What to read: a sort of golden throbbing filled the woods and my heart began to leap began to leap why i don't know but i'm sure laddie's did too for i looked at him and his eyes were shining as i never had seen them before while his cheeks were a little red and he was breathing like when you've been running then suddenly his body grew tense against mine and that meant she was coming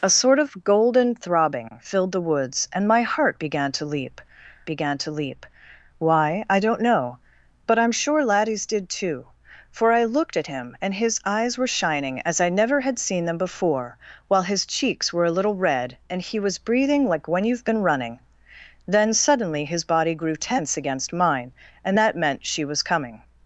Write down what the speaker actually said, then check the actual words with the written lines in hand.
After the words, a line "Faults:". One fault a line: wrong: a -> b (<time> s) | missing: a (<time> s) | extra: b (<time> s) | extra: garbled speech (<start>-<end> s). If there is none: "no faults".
a sort of golden throbbing filled the woods and my heart began to leap began to leap why i don't know but i'm sure laddie's did too for i looked at him and his eyes were shining as i never had seen them before while his cheeks were a little red and he was breathing like when you've been running then suddenly his body grew tense against mine and that meant she was coming
Faults:
no faults